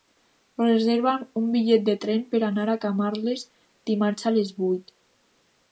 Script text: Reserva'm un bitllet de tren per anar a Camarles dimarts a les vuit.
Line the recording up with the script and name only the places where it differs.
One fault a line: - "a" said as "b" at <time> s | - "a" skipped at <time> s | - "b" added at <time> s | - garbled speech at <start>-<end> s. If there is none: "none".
none